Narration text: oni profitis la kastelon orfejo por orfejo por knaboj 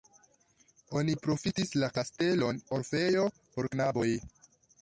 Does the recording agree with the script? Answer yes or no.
no